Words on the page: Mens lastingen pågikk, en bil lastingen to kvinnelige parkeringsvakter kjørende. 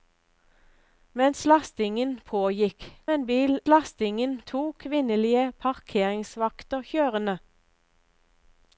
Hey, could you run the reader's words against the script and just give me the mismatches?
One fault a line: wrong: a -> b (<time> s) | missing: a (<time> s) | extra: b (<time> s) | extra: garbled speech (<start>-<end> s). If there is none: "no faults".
no faults